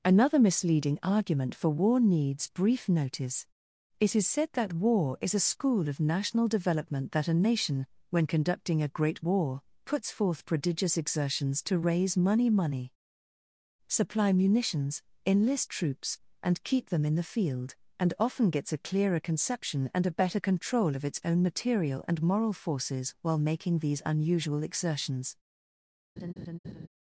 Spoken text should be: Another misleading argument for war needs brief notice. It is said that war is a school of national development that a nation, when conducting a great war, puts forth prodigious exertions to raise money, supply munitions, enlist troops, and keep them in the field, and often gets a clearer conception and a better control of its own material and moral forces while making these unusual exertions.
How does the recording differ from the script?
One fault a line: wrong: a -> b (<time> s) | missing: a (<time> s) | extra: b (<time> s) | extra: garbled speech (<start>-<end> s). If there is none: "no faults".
extra: money (12.5 s)